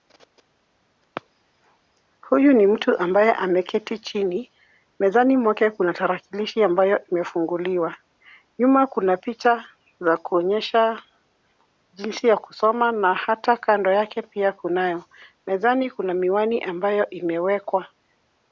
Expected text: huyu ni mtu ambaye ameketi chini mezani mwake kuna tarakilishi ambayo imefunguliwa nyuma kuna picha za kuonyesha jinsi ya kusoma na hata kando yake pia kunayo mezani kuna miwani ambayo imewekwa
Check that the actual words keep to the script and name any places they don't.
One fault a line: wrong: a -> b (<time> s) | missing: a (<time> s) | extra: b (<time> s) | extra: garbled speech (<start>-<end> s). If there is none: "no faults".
no faults